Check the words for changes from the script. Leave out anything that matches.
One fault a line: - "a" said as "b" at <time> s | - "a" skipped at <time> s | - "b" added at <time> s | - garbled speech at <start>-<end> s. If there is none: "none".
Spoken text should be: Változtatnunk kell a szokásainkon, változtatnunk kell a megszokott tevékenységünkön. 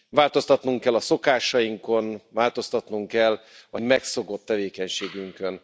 none